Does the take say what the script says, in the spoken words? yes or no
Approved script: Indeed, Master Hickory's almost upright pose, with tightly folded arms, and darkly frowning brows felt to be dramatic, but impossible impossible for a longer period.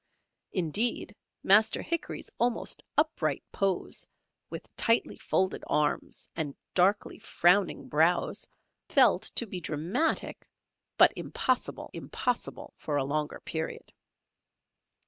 yes